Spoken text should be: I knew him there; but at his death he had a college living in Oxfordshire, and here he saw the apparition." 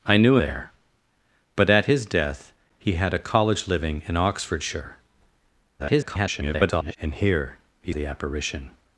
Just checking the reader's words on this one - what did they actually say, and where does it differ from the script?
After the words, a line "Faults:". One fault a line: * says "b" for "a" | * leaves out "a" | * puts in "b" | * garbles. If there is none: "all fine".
I knew there; but at his death he had a college living in Oxfordshire, [garbled] and here he the apparition."
Faults:
* leaves out "him"
* garbles
* leaves out "saw"